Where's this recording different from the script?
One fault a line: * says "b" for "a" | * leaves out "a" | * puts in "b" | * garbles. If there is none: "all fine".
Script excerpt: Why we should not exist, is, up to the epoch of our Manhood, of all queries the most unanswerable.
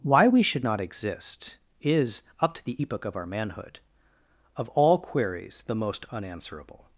all fine